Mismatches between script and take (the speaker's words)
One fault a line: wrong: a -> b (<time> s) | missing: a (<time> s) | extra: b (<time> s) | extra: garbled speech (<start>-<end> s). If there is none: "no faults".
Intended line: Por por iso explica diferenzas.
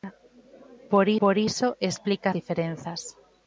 no faults